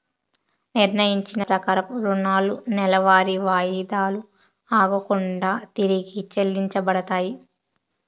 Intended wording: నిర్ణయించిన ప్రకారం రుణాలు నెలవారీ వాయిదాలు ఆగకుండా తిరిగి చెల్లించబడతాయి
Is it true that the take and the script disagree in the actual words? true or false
false